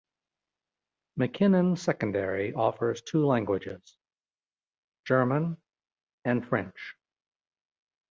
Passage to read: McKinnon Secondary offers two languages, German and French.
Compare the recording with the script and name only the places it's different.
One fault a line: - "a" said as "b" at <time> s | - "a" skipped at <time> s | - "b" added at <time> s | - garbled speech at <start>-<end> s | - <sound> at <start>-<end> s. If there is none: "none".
none